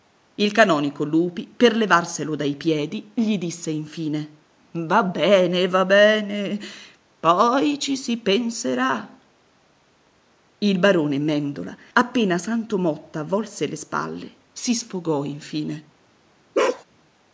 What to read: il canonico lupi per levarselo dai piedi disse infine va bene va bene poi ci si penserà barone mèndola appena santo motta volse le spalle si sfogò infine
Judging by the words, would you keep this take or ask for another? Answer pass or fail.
fail